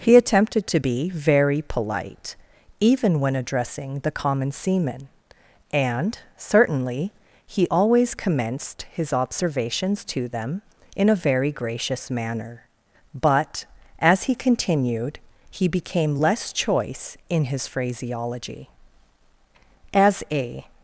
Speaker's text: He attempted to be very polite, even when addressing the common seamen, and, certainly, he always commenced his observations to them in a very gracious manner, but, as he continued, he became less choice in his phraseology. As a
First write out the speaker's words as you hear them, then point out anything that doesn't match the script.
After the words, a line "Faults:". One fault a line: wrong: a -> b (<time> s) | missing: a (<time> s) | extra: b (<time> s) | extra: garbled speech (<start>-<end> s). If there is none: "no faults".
He attempted to be very polite, even when addressing the common seamen, and, certainly, he always commenced his observations to them in a very gracious manner, but, as he continued, he became less choice in his phraseology. As a
Faults:
no faults